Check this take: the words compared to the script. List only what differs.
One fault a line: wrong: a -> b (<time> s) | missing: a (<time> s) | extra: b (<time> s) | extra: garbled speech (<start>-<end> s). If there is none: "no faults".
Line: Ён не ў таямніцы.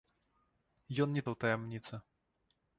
no faults